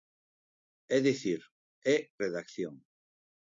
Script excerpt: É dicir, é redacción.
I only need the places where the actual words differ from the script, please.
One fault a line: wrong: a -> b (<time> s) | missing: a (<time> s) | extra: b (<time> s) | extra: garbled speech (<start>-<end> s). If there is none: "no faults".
no faults